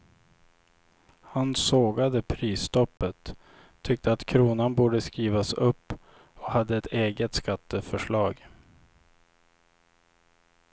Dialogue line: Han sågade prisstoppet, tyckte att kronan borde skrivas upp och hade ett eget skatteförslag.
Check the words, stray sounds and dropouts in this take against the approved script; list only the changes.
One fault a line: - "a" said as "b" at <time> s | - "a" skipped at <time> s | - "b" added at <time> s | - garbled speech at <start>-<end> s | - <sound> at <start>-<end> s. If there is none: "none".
- dropout at 3.0-3.0 s